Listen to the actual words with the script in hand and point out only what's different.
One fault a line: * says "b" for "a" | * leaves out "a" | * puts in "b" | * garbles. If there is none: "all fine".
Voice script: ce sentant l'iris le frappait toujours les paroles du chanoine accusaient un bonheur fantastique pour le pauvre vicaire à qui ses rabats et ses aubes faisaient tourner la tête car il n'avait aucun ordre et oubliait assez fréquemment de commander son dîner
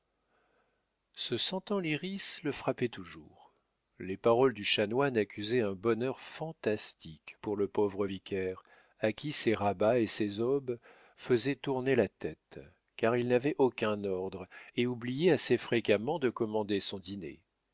all fine